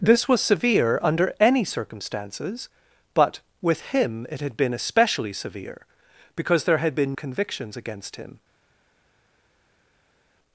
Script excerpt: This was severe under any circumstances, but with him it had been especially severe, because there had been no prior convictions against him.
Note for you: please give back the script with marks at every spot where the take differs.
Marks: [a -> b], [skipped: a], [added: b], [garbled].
This was severe under any circumstances, but with him it had been especially severe, because there had been [skipped: no prior] convictions against him.